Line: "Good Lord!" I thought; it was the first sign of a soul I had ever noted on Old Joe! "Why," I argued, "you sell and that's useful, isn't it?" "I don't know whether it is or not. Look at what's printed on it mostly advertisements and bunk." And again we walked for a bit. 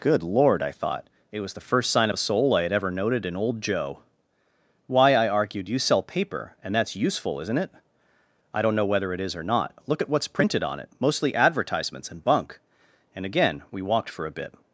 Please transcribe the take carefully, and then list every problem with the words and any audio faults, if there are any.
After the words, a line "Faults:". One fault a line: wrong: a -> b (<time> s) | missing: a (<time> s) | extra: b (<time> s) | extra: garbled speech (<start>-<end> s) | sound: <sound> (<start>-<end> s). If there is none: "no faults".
"Good Lord!" I thought; it was the first sign of a soul I had ever noted in Old Joe! "Why," I argued, "you sell paper, and that's useful, isn't it?" "I don't know whether it is or not. Look at what's printed on it mostly advertisements and bunk." And again we walked for a bit.
Faults:
wrong: on -> in (3.2 s)
extra: paper (6.0 s)